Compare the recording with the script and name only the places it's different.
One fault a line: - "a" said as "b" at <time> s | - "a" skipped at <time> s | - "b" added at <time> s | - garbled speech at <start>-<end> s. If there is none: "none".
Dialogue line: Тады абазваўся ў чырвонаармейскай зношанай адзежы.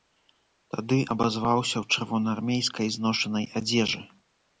none